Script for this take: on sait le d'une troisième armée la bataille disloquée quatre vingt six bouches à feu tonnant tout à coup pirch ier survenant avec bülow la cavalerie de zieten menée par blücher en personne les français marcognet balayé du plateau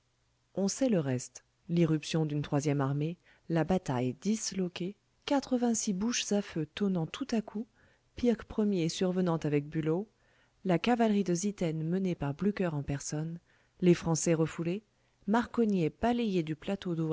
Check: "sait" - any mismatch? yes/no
no